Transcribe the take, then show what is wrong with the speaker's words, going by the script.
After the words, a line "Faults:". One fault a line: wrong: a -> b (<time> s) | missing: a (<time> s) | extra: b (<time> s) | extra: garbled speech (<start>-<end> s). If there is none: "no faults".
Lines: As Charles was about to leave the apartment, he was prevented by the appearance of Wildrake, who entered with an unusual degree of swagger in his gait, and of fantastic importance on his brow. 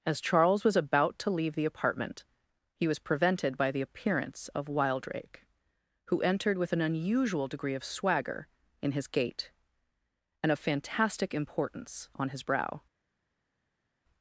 As Charles was about to leave the apartment, he was prevented by the appearance of Wildrake, who entered with an unusual degree of swagger in his gait, and of fantastic importance on his brow.
Faults:
no faults